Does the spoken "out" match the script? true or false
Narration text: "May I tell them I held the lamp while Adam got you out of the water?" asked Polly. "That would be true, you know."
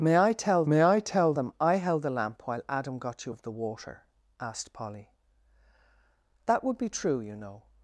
false